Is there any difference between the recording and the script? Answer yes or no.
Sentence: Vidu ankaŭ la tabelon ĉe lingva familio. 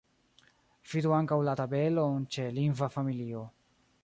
no